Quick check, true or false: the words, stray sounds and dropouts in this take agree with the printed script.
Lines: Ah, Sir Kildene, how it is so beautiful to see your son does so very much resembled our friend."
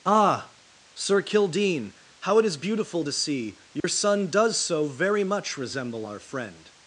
false